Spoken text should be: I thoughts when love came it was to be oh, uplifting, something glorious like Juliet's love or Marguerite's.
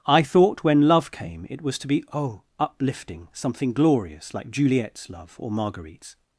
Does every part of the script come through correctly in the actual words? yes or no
no